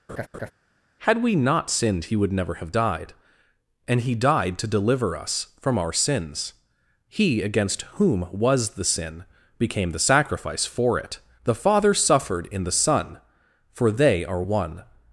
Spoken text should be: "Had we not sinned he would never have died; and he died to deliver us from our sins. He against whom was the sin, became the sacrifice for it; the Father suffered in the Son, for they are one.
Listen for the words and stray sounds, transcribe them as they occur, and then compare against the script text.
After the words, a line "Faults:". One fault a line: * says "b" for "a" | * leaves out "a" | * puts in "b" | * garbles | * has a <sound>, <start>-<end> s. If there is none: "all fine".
"Had we not sinned he would never have died; and he died to deliver us from our sins. He against whom was the sin, became the sacrifice for it; the Father suffered in the Son, for they are one.
Faults:
* has a laugh, 0.1-0.5 s